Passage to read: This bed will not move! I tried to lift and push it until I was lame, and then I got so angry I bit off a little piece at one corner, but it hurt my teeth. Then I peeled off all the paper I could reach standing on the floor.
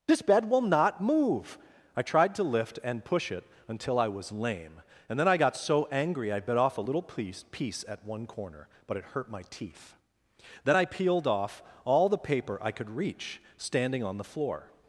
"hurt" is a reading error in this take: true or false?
false